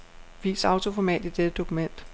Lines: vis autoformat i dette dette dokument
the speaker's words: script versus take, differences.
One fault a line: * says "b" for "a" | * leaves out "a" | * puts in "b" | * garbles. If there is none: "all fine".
* leaves out "dette"